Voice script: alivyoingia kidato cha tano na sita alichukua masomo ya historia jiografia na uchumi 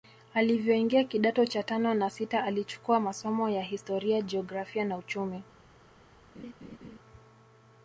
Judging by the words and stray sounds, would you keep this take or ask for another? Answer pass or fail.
fail